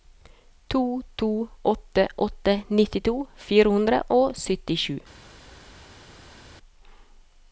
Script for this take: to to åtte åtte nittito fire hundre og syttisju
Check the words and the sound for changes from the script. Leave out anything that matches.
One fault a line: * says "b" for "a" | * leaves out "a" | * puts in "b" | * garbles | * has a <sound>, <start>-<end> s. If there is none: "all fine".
all fine